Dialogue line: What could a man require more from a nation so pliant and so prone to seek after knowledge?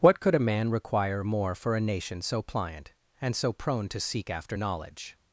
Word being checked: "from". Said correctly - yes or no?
no